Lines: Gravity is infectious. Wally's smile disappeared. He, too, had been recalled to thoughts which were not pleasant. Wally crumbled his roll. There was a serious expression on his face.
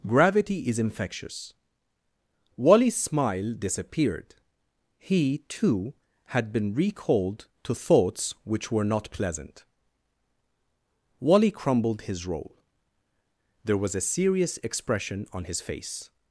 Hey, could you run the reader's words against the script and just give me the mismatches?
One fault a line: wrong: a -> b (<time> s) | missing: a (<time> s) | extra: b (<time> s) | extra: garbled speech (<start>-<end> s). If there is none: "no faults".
no faults